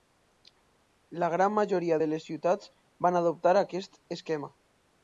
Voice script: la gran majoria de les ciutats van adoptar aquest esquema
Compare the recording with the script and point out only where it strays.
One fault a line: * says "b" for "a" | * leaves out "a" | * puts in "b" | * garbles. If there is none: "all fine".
all fine